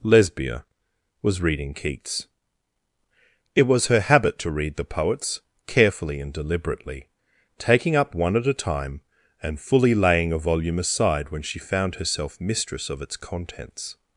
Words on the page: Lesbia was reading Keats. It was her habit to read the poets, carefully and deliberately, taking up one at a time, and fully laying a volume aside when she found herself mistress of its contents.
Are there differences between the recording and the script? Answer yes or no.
no